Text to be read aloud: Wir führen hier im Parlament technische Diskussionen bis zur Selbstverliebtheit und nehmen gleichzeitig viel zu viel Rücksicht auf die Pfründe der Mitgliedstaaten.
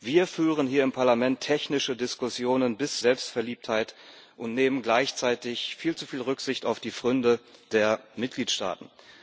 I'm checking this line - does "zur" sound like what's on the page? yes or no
no